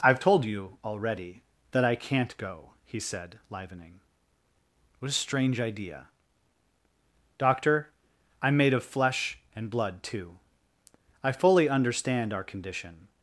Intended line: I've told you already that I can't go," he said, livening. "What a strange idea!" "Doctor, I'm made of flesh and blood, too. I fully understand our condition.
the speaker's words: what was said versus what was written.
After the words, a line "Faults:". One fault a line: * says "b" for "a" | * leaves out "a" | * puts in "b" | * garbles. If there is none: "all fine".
I've told you already that I can't go," he said, livening. "What a strange idea!" "Doctor, I'm made of flesh and blood, too. I fully understand our condition.
Faults:
all fine